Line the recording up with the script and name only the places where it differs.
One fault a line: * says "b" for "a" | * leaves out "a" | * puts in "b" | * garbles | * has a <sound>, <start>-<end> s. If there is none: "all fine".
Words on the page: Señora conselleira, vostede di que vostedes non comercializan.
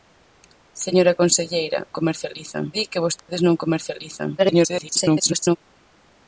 * says "comercializan" for "vostede"
* has a dropout, 3.2-3.3 s
* garbles